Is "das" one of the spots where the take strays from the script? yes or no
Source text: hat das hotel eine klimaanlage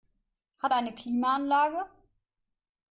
yes